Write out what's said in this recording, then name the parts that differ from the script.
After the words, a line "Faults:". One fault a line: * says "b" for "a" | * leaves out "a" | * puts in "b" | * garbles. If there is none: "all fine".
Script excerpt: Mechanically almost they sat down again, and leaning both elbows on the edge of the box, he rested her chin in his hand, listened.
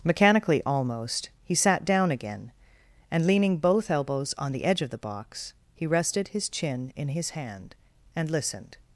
Mechanically almost he sat down again, and leaning both elbows on the edge of the box, he rested his chin in his hand, and listened.
Faults:
* says "he" for "they"
* says "his" for "her"
* puts in "and"